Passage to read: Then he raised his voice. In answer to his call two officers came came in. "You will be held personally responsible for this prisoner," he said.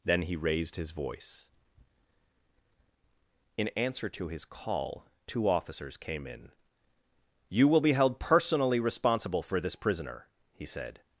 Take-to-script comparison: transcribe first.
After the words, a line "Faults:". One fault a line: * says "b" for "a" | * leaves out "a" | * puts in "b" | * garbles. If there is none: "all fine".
Then he raised his voice. In answer to his call two officers came in. "You will be held personally responsible for this prisoner," he said.
Faults:
* leaves out "came"